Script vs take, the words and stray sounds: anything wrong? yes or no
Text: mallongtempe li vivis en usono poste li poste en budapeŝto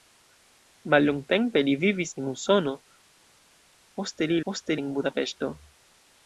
no